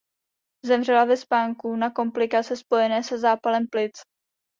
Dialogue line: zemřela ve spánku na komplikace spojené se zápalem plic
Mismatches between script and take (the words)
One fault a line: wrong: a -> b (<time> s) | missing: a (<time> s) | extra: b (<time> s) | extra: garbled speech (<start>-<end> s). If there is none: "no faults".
no faults